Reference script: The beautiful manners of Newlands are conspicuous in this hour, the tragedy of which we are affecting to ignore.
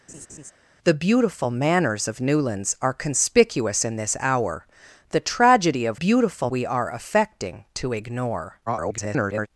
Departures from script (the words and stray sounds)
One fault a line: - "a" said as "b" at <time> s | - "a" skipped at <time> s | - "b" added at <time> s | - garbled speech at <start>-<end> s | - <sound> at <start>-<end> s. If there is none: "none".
- laugh at 0.1-0.5 s
- "which" said as "beautiful" at 5.9 s
- garbled speech at 8.7-9.5 s